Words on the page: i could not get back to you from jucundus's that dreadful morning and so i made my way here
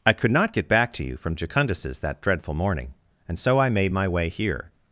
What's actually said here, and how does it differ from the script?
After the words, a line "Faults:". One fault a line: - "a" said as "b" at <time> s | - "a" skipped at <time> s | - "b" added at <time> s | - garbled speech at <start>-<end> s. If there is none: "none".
i could not get back to you from jucundus's that dreadful morning and so i made my way here
Faults:
none